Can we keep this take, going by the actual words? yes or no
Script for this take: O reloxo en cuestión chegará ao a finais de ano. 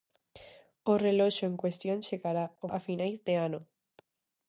yes